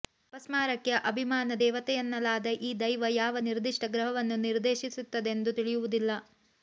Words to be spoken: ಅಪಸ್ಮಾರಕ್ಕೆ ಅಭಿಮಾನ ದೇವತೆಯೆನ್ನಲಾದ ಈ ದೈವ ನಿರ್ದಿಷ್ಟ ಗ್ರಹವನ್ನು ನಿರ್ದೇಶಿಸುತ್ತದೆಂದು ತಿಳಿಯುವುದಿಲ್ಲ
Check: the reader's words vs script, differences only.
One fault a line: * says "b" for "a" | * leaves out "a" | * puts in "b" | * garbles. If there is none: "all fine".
* puts in "ಯಾವ"